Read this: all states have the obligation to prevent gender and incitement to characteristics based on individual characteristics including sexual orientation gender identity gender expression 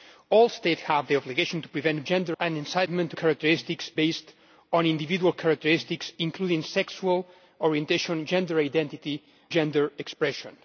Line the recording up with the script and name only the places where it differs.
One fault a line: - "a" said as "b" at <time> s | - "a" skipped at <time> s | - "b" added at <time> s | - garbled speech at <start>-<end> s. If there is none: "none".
none